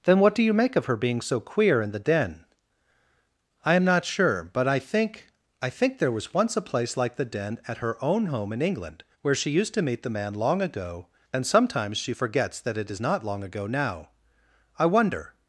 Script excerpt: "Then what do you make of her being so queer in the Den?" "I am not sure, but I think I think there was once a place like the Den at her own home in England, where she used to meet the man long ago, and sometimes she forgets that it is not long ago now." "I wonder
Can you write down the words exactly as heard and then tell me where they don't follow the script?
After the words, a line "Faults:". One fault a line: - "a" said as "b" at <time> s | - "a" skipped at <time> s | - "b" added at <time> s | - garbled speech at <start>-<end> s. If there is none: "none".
"Then what do you make of her being so queer in the Den?" "I am not sure, but I think I think there was once a place like the Den at her own home in England, where she used to meet the man long ago, and sometimes she forgets that it is not long ago now." "I wonder
Faults:
none